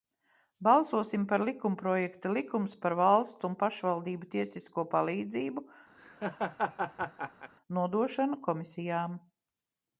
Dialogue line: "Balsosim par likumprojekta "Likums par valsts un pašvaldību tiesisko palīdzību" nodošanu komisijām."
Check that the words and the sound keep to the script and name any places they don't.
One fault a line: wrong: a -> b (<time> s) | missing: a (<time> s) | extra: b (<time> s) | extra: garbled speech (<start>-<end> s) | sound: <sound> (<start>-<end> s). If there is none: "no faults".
sound: laugh (6.0-7.5 s)